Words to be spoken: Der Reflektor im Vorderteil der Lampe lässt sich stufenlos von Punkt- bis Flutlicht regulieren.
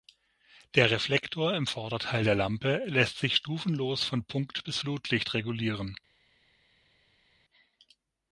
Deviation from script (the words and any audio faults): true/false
false